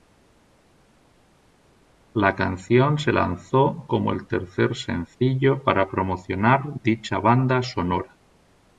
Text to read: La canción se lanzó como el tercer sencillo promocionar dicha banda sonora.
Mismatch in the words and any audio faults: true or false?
true